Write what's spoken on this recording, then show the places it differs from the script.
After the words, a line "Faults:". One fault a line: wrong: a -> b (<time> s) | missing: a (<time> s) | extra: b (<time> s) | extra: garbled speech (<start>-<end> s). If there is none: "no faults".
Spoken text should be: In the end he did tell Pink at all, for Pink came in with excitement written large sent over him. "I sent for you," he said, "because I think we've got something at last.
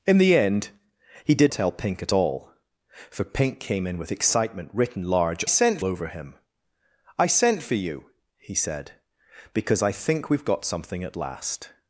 In the end he did tell Pink at all, for Pink came in with excitement written large sent over him. "I sent for you," he said, "because I think we've got something at last.
Faults:
no faults